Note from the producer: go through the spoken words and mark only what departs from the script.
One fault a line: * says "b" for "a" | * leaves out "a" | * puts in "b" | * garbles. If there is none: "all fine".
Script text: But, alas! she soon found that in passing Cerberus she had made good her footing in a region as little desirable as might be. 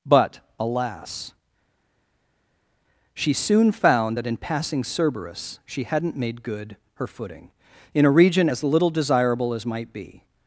* says "hadn't" for "had"